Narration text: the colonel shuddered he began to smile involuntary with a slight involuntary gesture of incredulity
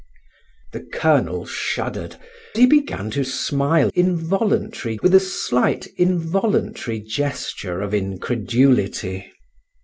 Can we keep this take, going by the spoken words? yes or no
yes